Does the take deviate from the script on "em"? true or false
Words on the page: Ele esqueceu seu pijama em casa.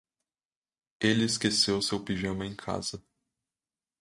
false